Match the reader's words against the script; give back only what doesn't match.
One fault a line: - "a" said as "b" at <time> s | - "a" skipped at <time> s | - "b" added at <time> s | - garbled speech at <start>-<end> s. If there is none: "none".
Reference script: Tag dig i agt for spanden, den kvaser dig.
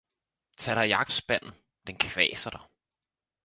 - "for" skipped at 1.1 s